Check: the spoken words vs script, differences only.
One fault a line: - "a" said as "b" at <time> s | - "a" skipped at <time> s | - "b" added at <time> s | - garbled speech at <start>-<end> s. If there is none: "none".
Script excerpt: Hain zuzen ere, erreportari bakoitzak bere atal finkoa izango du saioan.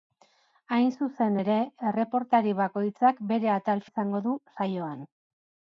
- "finkoa" skipped at 3.8 s